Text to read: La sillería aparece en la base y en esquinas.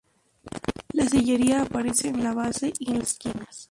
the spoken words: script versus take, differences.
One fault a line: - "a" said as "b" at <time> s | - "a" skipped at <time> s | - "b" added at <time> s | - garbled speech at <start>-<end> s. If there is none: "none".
none